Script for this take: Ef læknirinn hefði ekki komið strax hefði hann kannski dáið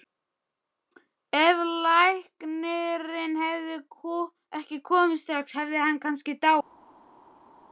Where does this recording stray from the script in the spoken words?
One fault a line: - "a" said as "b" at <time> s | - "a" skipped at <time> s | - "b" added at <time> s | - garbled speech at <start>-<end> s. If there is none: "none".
none